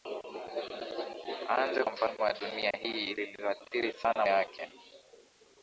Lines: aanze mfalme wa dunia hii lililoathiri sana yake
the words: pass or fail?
pass